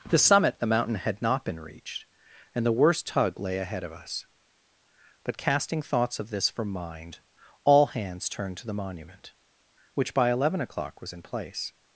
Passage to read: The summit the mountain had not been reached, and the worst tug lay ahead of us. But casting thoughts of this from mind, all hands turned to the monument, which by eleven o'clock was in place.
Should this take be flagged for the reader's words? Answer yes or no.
no